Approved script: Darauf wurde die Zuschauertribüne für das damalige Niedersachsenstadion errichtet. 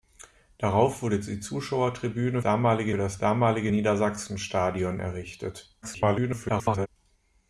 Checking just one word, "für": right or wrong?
wrong